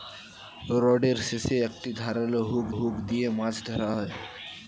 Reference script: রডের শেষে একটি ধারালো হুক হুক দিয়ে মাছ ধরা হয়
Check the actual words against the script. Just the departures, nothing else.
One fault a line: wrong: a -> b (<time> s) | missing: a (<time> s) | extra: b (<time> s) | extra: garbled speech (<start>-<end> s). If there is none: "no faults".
no faults